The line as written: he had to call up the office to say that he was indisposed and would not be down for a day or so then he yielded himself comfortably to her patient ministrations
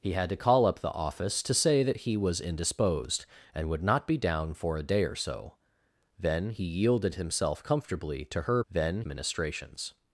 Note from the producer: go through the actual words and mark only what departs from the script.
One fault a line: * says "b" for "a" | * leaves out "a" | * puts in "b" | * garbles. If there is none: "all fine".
* says "then" for "patient"